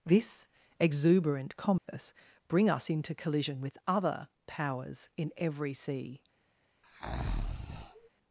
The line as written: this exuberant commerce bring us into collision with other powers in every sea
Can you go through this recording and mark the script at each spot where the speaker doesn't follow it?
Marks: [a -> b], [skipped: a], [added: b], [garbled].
this exuberant commerce bring us into collision with other powers in every sea